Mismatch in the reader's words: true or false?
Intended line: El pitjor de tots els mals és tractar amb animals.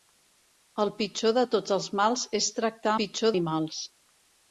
true